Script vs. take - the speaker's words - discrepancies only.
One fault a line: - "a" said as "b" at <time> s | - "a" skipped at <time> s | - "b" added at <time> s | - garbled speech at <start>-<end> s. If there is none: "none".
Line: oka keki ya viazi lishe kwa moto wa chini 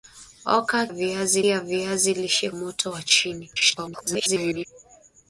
- "keki" said as "viazi" at 0.9 s
- "kwa" skipped at 2.5 s
- garbled speech at 3.5-4.7 s